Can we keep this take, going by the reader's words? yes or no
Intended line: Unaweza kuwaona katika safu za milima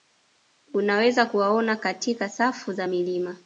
yes